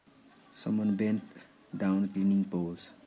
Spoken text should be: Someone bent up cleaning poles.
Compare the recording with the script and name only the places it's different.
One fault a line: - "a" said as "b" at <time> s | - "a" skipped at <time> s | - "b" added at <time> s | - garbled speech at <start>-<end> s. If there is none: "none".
- "up" said as "down" at 1.8 s